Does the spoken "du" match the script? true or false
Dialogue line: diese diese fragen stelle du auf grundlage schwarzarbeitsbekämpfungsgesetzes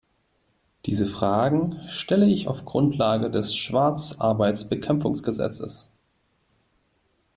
false